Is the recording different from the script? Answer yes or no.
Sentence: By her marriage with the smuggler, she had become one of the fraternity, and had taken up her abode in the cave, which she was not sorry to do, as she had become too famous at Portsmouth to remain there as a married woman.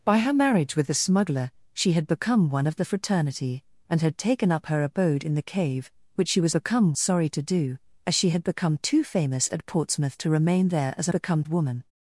yes